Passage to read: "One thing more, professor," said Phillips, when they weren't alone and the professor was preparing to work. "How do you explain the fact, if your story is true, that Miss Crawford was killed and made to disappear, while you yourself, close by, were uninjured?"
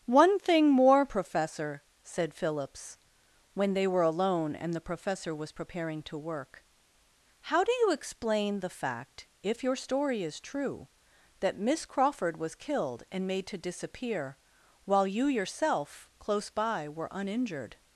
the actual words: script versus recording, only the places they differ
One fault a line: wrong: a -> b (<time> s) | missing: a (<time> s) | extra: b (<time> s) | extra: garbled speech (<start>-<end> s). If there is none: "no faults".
wrong: weren't -> were (3.9 s)